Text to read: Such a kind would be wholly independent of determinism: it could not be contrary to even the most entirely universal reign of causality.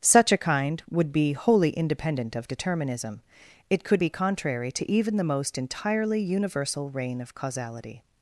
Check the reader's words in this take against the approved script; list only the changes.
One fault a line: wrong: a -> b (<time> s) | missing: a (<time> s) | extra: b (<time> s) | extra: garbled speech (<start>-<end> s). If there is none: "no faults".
missing: not (4.0 s)